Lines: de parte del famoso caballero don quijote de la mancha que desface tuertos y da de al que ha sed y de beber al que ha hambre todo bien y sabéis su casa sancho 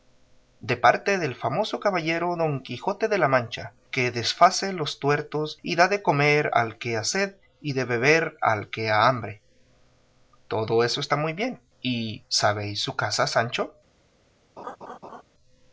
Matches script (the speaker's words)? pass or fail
fail